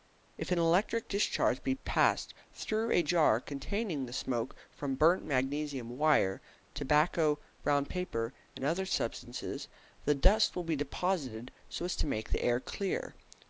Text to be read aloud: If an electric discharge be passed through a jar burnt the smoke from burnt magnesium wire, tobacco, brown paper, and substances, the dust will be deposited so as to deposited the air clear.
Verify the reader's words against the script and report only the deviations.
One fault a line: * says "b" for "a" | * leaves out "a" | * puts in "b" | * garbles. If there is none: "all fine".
* says "containing" for "burnt"
* puts in "other"
* says "make" for "deposited"